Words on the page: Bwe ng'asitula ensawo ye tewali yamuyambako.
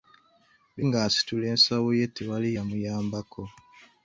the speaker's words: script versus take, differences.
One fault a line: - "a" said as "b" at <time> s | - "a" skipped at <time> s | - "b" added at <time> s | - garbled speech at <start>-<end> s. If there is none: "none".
none